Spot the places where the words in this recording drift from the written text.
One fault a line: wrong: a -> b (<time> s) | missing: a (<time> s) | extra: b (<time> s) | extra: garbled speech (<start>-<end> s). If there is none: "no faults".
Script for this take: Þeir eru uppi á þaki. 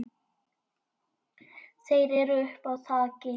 no faults